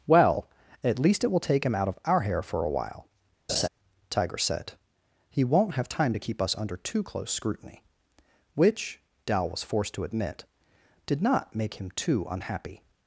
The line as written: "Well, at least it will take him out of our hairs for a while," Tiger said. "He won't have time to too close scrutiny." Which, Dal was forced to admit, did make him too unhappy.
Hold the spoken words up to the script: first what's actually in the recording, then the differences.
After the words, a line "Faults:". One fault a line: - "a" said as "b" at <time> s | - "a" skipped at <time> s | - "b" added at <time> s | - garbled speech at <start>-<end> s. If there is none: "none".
"Well, at least it will take him out of our hair for a while," Tiger said. "He won't have time to keep us under too close scrutiny." Which, Dal was forced to admit, did not make him too unhappy.
Faults:
- "hairs" said as "hair" at 2.2 s
- "keep us under" added at 6.2 s
- "not" added at 11.2 s